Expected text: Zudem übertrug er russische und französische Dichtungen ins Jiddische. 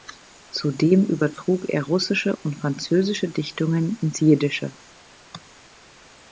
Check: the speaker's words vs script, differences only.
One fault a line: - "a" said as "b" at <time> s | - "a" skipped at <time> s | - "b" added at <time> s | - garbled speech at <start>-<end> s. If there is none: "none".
none